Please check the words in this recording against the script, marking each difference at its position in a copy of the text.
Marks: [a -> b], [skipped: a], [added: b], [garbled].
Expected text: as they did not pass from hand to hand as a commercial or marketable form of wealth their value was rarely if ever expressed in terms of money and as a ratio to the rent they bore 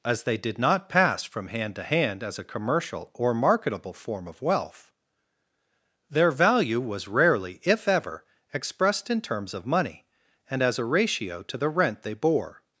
as they did not pass from hand to hand as a commercial or marketable form of wealth their value was rarely if ever expressed in terms of money and as a ratio to the rent they bore